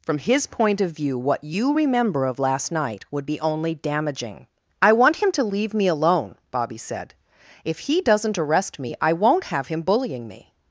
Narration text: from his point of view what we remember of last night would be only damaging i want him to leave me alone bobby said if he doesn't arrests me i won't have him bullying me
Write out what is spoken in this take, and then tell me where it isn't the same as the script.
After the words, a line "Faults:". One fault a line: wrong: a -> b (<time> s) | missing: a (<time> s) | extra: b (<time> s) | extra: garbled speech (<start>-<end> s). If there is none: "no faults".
from his point of view what you remember of last night would be only damaging i want him to leave me alone bobby said if he doesn't arrest me i won't have him bullying me
Faults:
wrong: we -> you (1.4 s)
wrong: arrests -> arrest (8.4 s)